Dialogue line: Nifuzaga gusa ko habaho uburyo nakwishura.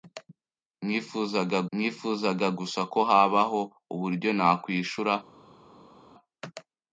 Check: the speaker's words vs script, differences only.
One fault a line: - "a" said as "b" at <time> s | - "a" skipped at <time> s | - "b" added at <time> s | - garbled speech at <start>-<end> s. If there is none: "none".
- "nifuzaga" added at 1.8 s